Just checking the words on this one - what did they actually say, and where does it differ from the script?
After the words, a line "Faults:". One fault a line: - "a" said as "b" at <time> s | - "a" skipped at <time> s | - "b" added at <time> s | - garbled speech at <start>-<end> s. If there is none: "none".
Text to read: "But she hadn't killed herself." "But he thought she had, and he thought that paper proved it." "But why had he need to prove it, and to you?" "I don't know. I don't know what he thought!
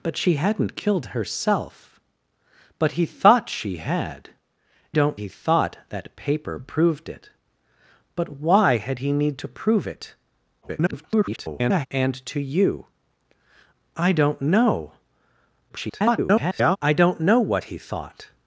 "But she hadn't killed herself." "But he thought she had, don't he thought that paper proved it." "But why had he need to prove it, [garbled] and to you?" "I don't know. [garbled] I don't know what he thought!
Faults:
- "and" said as "don't" at 4.9 s
- garbled speech at 10.6-11.9 s
- garbled speech at 15.7-16.8 s